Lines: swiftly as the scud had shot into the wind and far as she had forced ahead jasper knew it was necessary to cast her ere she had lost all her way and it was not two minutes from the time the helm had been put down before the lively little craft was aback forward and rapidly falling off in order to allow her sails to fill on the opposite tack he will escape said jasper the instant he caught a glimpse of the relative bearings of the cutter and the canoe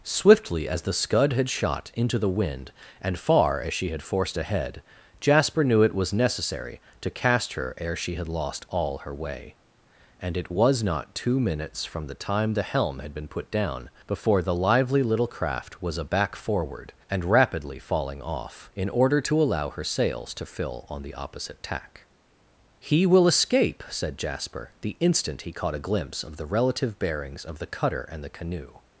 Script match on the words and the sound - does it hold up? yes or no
yes